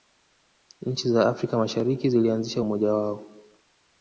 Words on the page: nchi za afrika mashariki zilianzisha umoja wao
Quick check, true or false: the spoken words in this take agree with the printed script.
true